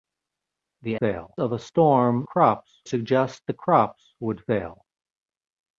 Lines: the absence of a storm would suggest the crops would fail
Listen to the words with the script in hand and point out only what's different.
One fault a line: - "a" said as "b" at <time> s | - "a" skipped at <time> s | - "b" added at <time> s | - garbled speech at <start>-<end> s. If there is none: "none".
- "absence" said as "fail" at 0.9 s
- "would" said as "crops" at 2.2 s